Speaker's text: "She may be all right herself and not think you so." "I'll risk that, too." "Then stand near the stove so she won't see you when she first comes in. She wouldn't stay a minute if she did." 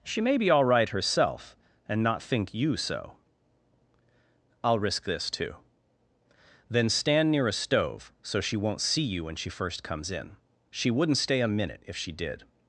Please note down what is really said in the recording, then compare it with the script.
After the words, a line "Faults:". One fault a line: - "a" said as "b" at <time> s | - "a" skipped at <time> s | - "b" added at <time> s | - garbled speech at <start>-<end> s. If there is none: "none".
"She may be all right herself and not think you so." "I'll risk this, too." "Then stand near a stove so she won't see you when she first comes in. She wouldn't stay a minute if she did."
Faults:
- "that" said as "this" at 5.0 s
- "the" said as "a" at 7.5 s